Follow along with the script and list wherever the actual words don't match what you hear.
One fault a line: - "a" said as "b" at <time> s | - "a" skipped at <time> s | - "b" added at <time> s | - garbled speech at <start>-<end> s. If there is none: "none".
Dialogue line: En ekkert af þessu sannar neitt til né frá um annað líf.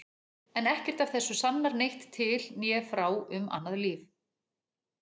none